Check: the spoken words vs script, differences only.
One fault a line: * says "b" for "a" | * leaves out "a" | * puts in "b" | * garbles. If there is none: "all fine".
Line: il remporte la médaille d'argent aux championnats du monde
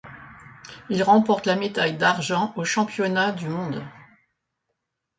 all fine